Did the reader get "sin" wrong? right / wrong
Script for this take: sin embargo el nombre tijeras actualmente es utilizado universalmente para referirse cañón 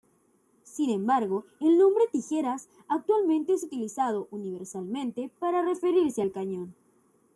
right